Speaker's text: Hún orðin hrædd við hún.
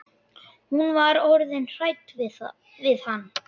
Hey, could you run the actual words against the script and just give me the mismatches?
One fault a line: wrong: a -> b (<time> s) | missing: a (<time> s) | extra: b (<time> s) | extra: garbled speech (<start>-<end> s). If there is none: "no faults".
extra: var (0.9 s)
wrong: hún -> hann (3.1 s)